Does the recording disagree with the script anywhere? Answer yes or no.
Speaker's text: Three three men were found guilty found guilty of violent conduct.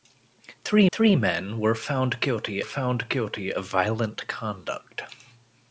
no